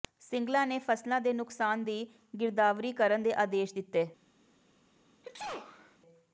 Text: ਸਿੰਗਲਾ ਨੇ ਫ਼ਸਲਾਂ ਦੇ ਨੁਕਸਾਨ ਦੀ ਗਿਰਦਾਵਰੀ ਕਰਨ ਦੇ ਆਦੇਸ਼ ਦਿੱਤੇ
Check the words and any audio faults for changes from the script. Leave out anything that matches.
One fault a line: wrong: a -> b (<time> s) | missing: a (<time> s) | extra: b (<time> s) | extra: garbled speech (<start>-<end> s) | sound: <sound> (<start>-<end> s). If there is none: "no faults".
sound: sneeze (5.2-6.0 s)